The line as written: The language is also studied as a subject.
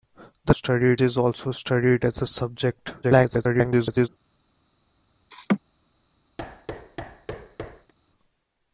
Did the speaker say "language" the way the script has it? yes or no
no